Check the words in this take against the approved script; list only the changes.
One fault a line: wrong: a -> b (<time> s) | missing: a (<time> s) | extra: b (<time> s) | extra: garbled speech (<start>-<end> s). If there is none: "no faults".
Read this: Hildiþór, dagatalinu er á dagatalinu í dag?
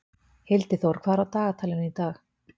wrong: dagatalinu -> hvað (1.0 s)